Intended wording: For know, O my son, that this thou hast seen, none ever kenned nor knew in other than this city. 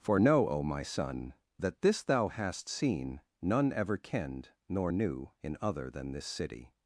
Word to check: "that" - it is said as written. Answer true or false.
true